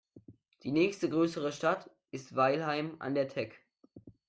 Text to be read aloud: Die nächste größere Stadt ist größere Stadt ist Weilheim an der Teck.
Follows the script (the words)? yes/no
no